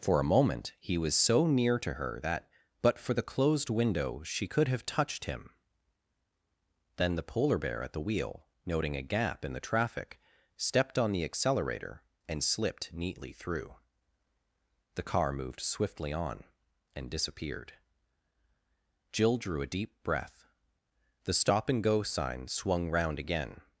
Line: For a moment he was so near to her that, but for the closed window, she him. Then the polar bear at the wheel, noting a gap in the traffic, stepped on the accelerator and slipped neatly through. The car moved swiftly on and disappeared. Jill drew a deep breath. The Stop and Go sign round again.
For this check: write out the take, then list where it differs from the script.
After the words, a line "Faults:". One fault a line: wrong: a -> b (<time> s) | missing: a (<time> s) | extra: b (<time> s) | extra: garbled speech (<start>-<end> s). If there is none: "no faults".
For a moment he was so near to her that, but for the closed window, she could have touched him. Then the polar bear at the wheel, noting a gap in the traffic, stepped on the accelerator and slipped neatly through. The car moved swiftly on and disappeared. Jill drew a deep breath. The Stop and Go sign swung round again.
Faults:
extra: could have touched (4.5 s)
extra: swung (22.5 s)